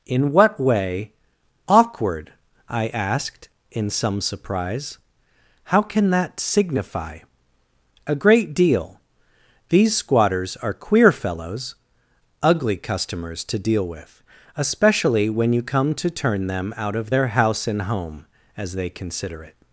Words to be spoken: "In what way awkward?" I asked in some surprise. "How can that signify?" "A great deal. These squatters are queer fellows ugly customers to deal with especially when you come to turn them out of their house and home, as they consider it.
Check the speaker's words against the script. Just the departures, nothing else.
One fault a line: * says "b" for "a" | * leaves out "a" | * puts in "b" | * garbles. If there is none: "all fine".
all fine